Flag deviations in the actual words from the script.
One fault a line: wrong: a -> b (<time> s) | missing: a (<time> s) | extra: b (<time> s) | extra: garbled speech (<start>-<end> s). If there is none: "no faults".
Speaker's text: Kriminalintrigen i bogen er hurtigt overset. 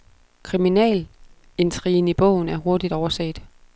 no faults